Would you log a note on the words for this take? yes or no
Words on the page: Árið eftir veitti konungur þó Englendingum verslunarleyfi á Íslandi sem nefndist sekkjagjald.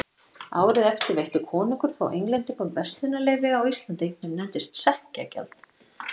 no